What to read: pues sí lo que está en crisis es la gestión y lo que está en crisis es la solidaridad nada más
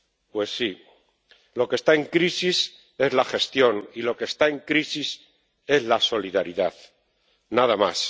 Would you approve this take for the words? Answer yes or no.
yes